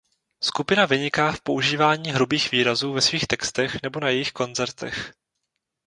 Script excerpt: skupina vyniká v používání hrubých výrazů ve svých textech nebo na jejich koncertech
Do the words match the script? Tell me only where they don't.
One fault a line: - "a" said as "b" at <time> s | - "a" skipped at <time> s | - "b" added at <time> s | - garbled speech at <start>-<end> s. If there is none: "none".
none